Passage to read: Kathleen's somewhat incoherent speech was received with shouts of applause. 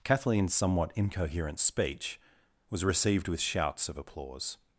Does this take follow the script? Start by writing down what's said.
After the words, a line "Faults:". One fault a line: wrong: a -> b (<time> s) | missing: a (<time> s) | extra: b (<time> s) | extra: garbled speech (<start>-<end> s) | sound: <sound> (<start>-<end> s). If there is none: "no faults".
Kathleen's somewhat incoherent speech was received with shouts of applause.
Faults:
no faults